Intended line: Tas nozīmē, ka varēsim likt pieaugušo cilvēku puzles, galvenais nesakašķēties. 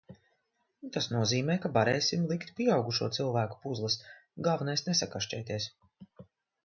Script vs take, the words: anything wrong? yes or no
no